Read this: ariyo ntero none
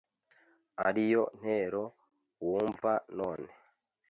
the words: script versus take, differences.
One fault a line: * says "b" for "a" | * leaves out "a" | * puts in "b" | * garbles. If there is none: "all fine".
* puts in "wumva"